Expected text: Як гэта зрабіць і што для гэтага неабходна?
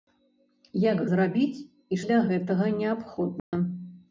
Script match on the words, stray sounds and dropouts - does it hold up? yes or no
no